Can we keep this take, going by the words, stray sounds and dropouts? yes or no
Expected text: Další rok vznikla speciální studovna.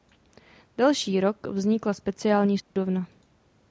no